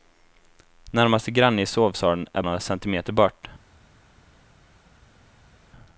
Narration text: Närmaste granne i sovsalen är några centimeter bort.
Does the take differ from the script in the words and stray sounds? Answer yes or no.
no